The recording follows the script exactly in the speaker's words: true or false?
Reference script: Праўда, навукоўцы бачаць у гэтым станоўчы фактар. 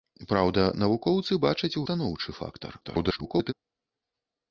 false